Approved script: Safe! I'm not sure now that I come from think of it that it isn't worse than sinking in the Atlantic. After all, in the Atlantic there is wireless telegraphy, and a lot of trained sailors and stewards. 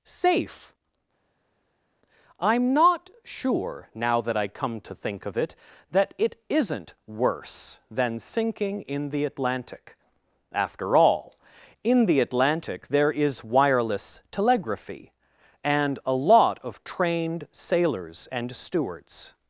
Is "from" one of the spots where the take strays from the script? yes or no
yes